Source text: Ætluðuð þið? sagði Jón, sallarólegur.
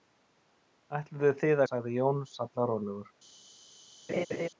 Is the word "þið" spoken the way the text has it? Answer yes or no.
yes